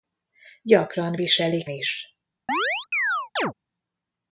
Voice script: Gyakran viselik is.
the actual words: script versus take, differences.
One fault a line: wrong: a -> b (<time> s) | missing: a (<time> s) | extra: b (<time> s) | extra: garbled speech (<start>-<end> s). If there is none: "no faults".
no faults